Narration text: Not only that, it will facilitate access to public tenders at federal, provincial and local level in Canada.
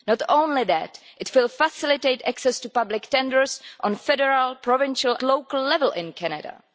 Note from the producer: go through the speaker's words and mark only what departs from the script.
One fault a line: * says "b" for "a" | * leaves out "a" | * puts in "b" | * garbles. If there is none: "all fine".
* leaves out "and"